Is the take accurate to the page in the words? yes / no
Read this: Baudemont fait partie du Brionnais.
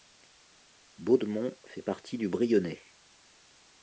yes